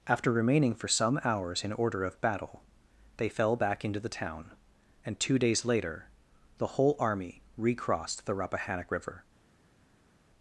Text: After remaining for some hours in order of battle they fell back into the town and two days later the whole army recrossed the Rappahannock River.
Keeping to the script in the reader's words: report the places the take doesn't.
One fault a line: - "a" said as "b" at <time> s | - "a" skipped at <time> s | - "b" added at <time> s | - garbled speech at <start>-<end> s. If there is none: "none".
none